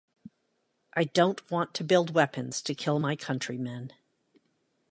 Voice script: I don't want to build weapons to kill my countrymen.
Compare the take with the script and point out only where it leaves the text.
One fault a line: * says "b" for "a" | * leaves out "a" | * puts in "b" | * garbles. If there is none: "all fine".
all fine